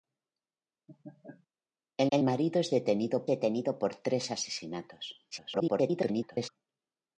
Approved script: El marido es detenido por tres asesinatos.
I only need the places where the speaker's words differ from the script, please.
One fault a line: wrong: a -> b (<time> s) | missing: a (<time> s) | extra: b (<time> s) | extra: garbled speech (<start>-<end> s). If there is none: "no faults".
extra: el (2.1 s)
extra: detenido (3.3 s)
extra: garbled speech (5.3-6.5 s)